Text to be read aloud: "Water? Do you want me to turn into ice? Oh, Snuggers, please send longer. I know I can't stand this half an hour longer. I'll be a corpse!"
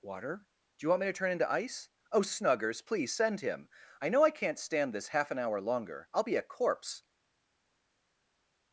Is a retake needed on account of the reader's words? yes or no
yes